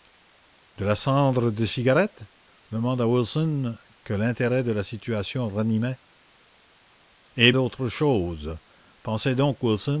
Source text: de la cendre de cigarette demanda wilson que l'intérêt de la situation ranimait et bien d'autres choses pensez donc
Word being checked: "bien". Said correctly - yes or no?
no